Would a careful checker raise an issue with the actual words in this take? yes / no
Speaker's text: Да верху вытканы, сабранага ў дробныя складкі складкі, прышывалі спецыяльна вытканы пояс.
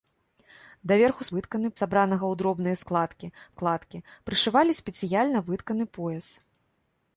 no